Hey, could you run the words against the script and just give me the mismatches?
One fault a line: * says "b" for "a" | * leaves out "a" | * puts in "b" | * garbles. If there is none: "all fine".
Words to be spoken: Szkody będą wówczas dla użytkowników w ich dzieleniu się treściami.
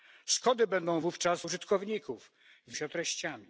* leaves out "dla"
* leaves out "ich dzieleniu"